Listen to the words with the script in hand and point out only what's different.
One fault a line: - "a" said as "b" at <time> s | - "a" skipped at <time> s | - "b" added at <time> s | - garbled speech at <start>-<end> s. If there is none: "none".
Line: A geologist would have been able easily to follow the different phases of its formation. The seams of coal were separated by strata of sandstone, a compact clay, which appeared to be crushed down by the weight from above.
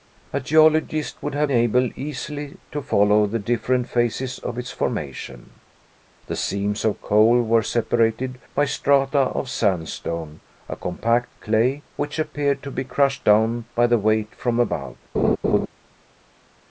- "been" skipped at 1.5 s